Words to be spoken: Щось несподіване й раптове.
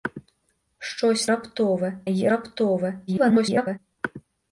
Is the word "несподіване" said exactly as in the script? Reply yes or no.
no